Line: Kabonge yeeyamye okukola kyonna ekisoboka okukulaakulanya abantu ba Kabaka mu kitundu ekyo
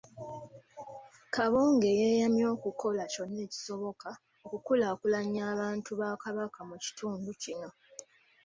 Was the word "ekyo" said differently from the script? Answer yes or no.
yes